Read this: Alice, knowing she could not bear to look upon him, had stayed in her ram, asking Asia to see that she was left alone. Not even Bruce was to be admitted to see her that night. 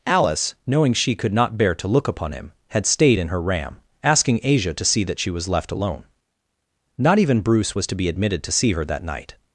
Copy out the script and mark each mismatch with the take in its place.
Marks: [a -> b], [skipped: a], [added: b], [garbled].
Alice, knowing she could not bear to look upon him, had stayed in her ram, asking Asia to see that she was left alone. Not even Bruce was to be admitted to see her that night.